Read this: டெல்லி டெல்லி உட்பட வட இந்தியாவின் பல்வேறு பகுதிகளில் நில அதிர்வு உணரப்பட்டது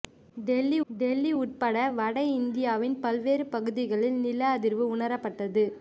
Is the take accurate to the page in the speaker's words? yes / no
yes